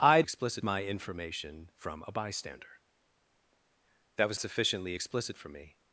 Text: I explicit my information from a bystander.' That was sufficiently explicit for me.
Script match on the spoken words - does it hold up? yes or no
yes